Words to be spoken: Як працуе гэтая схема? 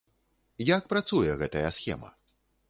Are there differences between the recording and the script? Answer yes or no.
no